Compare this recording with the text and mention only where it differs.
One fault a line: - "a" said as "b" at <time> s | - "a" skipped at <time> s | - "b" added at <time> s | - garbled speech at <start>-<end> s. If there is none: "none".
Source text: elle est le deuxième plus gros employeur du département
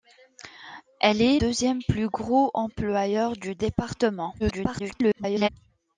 - "le" skipped at 1.4 s
- garbled speech at 4.4-5.5 s